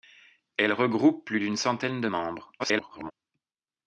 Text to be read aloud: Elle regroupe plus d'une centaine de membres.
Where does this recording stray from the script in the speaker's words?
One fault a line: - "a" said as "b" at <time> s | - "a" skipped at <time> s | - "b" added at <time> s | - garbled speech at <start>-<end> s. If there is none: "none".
- garbled speech at 2.6-3.1 s